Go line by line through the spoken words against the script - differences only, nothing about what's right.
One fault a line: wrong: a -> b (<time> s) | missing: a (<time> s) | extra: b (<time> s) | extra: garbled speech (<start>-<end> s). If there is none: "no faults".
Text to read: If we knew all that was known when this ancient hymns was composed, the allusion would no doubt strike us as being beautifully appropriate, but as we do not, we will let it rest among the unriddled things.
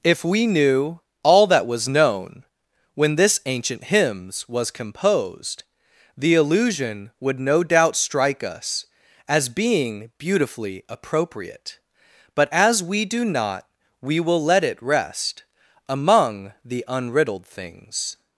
no faults